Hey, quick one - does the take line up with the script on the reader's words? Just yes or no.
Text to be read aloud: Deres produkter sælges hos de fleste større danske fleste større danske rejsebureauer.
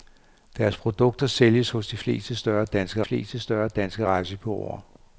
yes